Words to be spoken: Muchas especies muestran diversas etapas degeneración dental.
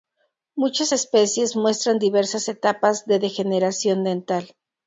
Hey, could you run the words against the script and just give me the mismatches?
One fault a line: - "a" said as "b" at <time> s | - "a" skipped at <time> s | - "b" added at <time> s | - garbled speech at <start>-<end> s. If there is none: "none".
- "de" added at 3.0 s